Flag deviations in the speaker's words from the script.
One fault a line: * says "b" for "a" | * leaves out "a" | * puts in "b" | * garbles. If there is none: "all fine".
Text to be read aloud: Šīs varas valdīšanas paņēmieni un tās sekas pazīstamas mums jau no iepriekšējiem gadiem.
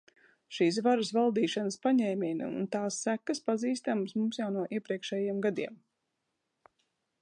all fine